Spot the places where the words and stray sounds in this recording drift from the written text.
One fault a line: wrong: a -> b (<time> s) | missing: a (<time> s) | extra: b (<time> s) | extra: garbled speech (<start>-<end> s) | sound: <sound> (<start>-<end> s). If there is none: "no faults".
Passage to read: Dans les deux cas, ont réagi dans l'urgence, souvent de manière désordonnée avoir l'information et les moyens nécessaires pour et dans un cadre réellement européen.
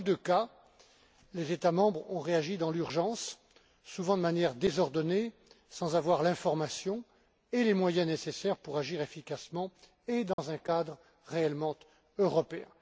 extra: les États membres (1.4 s)
extra: sans (5.7 s)
extra: agir efficacement (8.8 s)
sound: dropout (10.3-10.4 s)